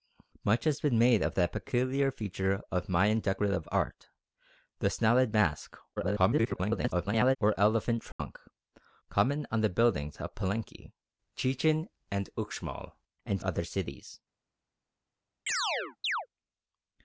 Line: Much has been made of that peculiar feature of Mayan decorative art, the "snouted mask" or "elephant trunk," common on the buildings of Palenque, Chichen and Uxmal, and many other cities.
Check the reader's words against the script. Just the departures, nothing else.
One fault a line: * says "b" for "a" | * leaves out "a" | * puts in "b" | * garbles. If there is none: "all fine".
* garbles
* leaves out "many"